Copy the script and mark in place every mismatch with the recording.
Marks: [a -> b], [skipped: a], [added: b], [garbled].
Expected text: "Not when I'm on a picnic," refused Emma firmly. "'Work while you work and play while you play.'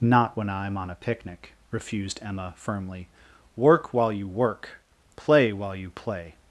"Not when I'm on a picnic," refused Emma firmly. "'Work while you work [skipped: and] play while you play.'